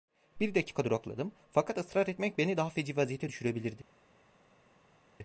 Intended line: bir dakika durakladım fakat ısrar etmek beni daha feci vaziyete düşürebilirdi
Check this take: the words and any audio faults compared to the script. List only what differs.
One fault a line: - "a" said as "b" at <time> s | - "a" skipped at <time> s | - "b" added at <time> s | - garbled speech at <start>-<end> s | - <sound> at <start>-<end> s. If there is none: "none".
none